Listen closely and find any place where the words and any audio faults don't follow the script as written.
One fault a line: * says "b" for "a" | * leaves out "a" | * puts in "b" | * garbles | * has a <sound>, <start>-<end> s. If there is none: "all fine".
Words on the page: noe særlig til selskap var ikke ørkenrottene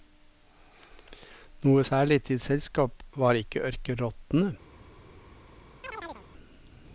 * has a chirp, 5.8-6.3 s